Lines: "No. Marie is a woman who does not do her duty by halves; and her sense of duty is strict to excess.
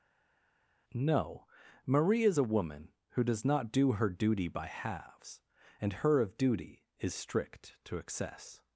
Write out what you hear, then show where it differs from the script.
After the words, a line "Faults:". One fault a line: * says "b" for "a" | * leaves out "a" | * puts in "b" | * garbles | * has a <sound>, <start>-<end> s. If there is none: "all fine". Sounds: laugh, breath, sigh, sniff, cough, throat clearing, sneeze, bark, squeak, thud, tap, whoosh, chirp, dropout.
"No. Marie is a woman who does not do her duty by halves; and her of duty is strict to excess.
Faults:
* leaves out "sense"